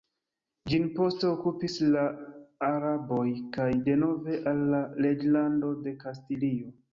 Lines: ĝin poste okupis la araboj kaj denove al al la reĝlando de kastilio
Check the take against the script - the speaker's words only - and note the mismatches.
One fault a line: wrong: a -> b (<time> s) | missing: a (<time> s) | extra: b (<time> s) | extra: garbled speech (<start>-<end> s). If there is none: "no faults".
missing: al (4.6 s)